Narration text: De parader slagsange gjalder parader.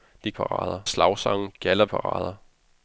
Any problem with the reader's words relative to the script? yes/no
no